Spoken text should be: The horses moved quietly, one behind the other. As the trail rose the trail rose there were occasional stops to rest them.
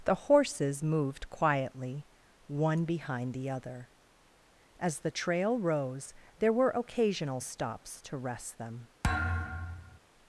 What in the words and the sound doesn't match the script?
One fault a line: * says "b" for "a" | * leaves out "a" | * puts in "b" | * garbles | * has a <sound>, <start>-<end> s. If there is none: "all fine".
* leaves out "the trail rose"
* has a thud, 9.0-10.0 s